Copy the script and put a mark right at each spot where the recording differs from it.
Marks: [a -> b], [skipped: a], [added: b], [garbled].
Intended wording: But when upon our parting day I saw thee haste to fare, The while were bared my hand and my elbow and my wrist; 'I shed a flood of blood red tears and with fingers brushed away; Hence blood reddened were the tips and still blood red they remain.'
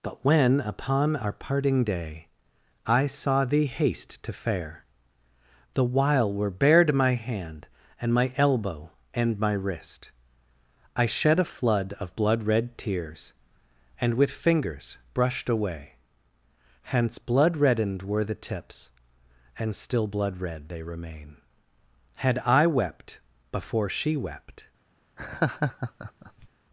But when upon our parting day I saw thee haste to fare, The while were bared my hand and my elbow and my wrist; 'I shed a flood of blood red tears and with fingers brushed away; Hence blood reddened were the tips and still blood red they remain.' [added: Had I wept before she wept]